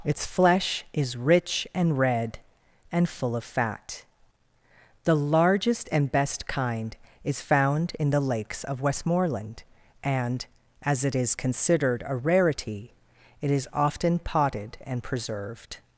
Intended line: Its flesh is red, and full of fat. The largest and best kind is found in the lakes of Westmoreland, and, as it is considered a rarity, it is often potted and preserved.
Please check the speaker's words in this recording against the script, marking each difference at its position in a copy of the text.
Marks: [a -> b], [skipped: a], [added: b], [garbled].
Its flesh is [added: rich and] red, and full of fat. The largest and best kind is found in the lakes of Westmoreland, and, as it is considered a rarity, it is often potted and preserved.